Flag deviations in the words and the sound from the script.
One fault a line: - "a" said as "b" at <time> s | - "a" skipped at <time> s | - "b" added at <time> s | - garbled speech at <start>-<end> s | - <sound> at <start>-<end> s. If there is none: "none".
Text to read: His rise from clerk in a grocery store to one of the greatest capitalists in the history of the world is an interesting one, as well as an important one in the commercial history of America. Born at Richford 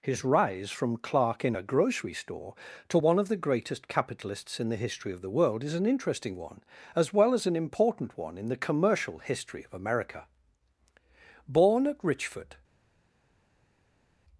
none